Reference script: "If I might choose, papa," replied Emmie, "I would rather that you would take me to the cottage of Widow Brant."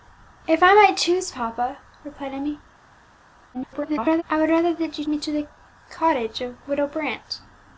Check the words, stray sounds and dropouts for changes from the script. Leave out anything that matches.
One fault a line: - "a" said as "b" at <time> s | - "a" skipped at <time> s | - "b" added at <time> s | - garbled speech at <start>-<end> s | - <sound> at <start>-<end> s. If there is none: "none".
- garbled speech at 3.5-4.2 s
- "take" skipped at 5.1 s